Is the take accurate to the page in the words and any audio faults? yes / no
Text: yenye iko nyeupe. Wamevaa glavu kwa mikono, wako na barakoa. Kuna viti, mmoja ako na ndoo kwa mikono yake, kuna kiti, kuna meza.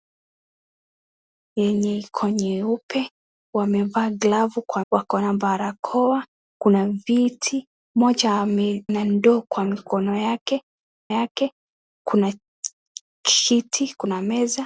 no